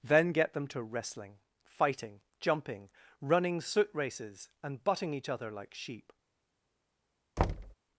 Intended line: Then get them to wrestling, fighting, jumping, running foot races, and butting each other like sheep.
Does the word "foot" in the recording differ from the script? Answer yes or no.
yes